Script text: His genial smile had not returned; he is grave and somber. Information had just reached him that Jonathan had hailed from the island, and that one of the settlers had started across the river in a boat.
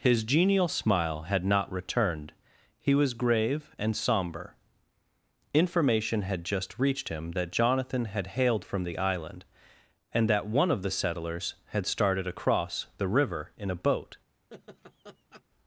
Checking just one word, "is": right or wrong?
wrong